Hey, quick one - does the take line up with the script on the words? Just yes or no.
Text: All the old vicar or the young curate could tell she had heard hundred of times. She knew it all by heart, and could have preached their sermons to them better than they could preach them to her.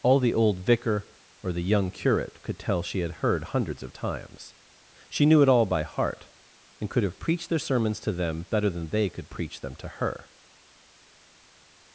no